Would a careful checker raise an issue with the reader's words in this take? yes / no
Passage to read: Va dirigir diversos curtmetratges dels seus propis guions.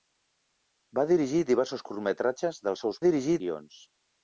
yes